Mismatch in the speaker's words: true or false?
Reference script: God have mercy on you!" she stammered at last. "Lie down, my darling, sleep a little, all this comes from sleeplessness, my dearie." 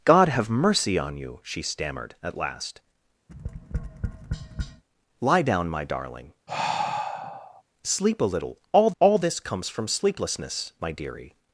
true